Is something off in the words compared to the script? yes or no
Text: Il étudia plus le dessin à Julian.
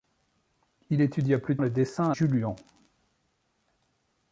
no